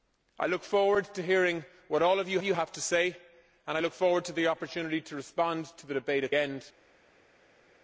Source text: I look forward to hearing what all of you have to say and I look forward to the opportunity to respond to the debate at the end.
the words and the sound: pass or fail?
fail